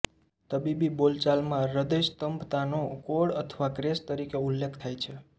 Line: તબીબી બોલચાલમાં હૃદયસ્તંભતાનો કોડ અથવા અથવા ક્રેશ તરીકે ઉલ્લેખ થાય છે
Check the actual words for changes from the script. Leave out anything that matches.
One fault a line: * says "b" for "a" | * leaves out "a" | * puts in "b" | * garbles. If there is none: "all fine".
* leaves out "અથવા"